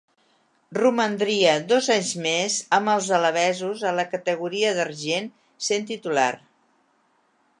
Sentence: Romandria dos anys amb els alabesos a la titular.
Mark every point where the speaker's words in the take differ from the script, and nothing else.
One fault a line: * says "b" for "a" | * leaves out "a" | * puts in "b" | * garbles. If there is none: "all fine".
* puts in "més"
* puts in "categoria d'argent sent"